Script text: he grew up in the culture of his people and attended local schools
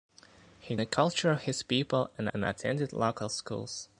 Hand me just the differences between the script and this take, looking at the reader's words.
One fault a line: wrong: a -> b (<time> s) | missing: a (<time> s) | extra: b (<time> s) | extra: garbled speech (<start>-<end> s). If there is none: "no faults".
missing: grew up in (0.8 s)
extra: and (2.3 s)